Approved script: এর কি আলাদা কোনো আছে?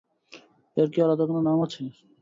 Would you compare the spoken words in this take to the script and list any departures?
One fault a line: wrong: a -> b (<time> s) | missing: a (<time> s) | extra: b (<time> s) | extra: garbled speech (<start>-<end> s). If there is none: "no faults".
extra: নাম (1.5 s)